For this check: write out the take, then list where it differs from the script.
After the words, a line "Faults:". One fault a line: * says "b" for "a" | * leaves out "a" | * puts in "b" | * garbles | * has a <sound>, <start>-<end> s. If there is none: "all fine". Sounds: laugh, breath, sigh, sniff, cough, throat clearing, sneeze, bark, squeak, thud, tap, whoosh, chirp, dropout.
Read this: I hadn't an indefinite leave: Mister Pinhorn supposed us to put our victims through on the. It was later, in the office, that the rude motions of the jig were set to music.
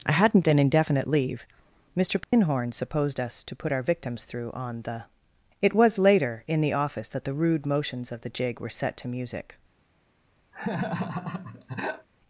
I hadn't an indefinite leave: Mister Pinhorn supposed us to put our victims through on the. It was later, in the office, that the rude motions of the jig were set to music.
Faults:
* has a dropout, 2.2-2.3 s
* has a laugh, 10.5-12.1 s